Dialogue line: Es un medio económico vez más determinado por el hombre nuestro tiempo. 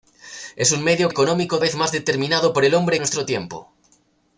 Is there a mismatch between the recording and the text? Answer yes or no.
no